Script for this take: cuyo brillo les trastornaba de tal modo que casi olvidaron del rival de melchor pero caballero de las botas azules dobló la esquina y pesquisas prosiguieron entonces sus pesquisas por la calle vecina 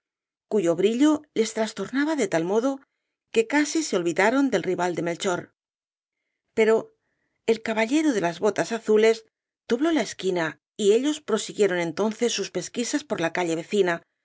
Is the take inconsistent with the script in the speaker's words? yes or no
yes